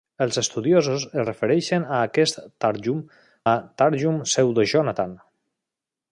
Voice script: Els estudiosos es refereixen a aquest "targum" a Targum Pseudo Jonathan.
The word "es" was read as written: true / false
true